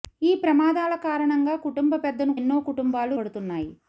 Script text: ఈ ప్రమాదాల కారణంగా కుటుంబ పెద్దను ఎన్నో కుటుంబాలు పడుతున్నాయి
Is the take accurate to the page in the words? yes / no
yes